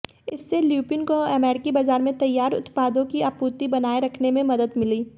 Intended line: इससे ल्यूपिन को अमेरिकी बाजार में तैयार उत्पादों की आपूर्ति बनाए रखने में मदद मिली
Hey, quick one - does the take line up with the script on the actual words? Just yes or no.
yes